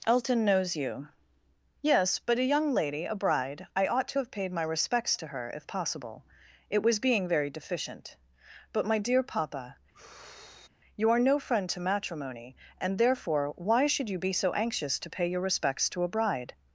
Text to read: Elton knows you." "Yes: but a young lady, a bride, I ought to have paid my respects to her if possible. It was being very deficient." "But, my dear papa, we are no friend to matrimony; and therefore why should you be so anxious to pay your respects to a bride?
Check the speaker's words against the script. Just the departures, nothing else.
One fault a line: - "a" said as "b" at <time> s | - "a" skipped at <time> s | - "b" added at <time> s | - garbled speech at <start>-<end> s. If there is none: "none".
- "we" said as "you" at 11.0 s